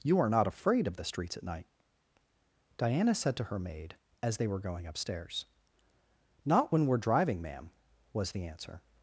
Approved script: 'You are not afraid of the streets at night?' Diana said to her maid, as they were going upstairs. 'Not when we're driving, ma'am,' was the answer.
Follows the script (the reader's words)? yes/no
yes